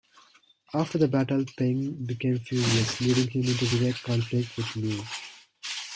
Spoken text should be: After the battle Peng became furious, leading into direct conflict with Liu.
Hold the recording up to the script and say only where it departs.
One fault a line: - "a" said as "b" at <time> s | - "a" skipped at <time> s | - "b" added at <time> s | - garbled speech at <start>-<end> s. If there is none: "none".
- "him" added at 3.3 s